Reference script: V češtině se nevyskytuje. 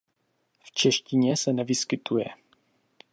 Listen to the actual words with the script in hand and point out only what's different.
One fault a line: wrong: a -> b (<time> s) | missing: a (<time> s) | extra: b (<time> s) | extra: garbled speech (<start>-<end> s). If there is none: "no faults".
no faults